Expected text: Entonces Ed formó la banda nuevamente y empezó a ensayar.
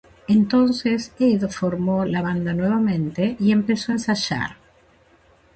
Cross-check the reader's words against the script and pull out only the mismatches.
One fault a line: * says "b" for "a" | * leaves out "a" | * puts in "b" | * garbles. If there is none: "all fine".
all fine